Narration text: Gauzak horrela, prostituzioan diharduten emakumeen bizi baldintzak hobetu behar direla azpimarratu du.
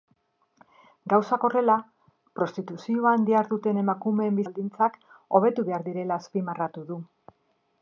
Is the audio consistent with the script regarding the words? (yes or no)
no